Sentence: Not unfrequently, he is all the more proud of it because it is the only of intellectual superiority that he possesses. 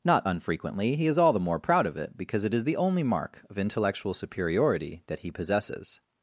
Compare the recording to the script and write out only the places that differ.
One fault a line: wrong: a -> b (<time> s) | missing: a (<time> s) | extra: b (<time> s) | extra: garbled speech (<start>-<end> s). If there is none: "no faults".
extra: mark (3.0 s)